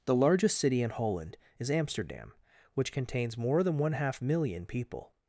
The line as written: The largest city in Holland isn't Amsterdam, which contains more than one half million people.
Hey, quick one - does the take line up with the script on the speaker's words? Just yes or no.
no